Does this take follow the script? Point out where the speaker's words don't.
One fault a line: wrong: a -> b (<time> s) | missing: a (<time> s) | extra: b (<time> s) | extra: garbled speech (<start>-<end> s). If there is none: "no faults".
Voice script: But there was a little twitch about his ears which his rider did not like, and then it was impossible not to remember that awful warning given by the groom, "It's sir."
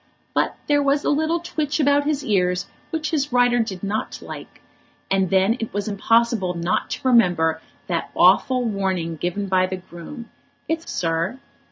no faults